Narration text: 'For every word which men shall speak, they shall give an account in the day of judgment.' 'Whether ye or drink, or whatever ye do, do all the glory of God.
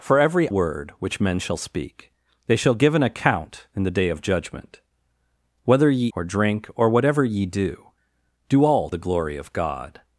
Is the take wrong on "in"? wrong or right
right